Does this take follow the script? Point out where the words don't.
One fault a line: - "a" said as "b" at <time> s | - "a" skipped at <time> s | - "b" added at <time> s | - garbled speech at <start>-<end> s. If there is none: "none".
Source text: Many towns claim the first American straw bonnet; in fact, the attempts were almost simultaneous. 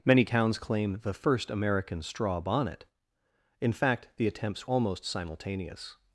- "were" skipped at 4.7 s